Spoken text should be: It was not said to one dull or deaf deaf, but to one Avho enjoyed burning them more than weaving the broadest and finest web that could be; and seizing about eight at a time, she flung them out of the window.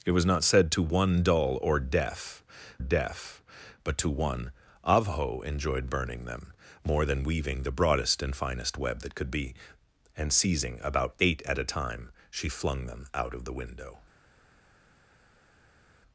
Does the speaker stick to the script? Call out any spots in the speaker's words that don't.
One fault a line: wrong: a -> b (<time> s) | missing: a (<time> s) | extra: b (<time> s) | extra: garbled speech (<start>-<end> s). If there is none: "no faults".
no faults